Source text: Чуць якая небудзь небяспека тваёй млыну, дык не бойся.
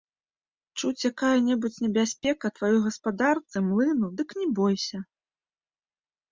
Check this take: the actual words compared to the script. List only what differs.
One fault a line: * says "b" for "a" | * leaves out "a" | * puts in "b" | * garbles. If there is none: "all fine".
* puts in "гаспадарцы"